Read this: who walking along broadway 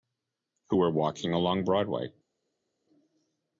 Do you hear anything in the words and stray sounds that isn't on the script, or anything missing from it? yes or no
yes